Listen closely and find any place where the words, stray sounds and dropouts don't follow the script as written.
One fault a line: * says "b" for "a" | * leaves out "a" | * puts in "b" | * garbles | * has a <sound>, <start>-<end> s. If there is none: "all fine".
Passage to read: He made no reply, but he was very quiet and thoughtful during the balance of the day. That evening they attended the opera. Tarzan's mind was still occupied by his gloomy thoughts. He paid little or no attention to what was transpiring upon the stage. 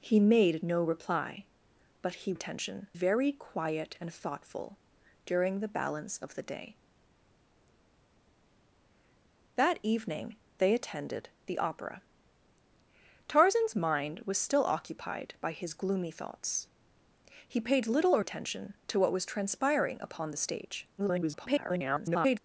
* says "attention" for "was"
* leaves out "no"
* garbles